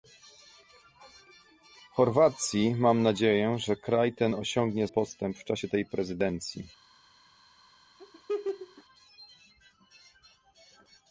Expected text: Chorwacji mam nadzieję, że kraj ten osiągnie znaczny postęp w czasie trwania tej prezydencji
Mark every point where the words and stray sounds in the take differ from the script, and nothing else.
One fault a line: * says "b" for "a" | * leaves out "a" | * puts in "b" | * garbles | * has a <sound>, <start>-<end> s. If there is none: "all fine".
* leaves out "znaczny"
* leaves out "trwania"
* has a laugh, 8.0-8.8 s